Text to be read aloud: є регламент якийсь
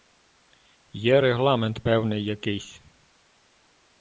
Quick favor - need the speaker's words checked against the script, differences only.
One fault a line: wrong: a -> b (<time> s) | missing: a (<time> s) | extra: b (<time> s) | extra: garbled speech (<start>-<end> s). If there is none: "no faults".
extra: певний (1.8 s)